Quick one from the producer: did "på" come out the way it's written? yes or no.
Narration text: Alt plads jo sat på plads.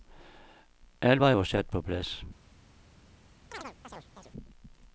yes